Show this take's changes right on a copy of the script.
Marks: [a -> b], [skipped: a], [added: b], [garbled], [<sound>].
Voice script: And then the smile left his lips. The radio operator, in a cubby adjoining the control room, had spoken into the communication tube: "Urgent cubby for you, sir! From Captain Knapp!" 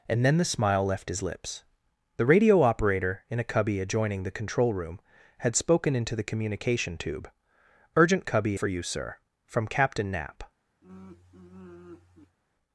And then the smile left his lips. The radio operator, in a cubby adjoining the control room, had spoken into the communication tube: "Urgent cubby for you, sir! From Captain Knapp!" [sigh]